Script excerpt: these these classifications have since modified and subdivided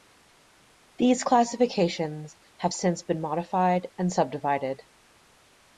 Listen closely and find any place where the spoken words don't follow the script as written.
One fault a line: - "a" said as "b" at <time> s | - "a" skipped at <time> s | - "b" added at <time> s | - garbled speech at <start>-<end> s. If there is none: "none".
- "these" skipped at 1.2 s
- "been" added at 3.0 s